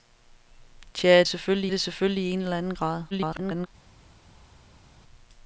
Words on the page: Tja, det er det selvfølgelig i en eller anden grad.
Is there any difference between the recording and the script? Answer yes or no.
yes